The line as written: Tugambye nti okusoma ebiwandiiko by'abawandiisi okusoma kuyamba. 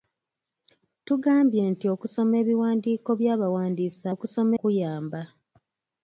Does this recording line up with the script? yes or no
yes